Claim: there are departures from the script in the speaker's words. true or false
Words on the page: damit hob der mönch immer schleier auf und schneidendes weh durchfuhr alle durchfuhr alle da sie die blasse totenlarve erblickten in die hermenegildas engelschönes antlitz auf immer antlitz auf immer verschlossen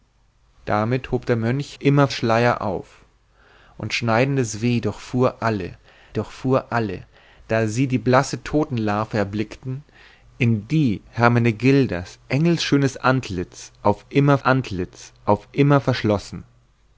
false